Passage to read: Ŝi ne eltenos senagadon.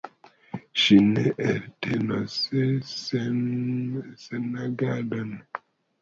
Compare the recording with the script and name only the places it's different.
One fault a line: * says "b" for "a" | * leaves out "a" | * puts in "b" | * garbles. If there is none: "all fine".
all fine